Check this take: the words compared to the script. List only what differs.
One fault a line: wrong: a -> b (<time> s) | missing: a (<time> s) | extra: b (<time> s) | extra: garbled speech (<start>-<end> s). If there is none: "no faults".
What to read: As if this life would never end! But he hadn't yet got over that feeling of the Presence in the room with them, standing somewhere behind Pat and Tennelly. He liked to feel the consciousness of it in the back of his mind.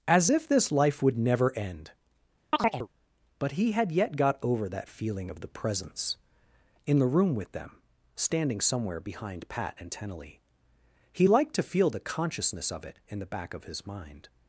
wrong: hadn't -> had (3.7 s)